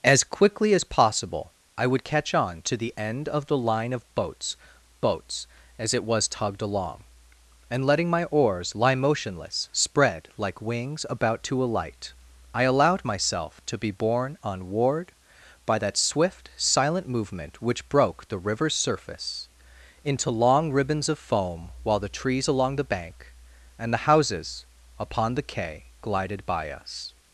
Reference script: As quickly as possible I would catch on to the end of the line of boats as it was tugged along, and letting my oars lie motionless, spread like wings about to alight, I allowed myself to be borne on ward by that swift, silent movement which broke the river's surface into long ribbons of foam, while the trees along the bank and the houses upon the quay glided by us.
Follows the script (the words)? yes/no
no